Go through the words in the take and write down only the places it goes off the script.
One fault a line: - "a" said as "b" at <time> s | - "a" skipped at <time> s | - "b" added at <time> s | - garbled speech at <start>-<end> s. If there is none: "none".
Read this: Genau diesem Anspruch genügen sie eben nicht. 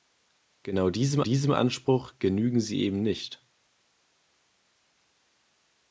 - "diesem" added at 1.2 s